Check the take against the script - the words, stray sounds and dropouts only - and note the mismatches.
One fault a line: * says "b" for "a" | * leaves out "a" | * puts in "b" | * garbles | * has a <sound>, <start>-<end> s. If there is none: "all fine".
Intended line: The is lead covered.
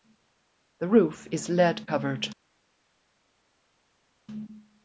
* puts in "roof"